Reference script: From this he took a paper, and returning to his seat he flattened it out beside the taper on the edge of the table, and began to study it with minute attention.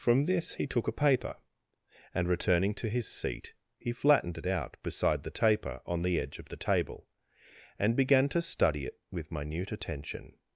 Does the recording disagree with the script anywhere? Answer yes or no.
no